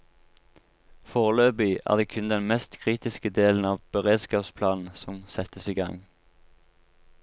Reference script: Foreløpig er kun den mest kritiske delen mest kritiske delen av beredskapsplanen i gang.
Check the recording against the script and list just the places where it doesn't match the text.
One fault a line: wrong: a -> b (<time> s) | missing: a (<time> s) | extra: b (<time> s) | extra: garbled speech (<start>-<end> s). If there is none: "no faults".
extra: det (1.9 s)
wrong: mest kritiske delen av beredskapsplanen -> av beredskapsplanen som settes (3.7 s)